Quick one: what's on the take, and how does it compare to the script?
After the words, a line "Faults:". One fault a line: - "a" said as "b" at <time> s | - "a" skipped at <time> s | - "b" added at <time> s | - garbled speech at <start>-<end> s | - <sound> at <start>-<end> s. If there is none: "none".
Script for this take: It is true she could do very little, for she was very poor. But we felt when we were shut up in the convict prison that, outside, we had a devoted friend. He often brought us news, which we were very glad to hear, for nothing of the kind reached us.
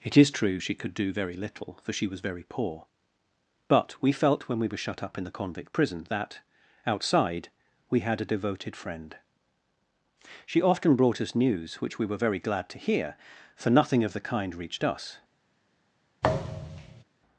It is true she could do very little, for she was very poor. But we felt when we were shut up in the convict prison that, outside, we had a devoted friend. She often brought us news, which we were very glad to hear, for nothing of the kind reached us.
Faults:
- "He" said as "She" at 10.5 s
- thud at 16.2-17.0 s